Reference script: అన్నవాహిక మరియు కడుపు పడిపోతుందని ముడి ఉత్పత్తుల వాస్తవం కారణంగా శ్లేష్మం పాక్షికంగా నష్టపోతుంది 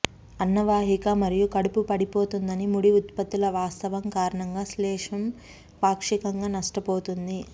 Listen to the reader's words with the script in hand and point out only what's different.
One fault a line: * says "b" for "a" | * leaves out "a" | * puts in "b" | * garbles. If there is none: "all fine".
all fine